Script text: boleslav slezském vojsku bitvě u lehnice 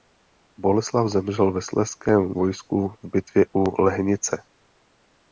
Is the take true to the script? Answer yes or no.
no